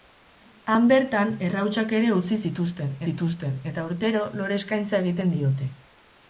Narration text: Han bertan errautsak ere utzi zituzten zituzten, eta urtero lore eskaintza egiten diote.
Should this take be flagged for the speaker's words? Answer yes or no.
no